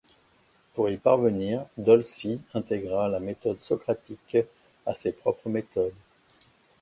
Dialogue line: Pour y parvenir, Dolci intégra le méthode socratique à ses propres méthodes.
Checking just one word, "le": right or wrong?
wrong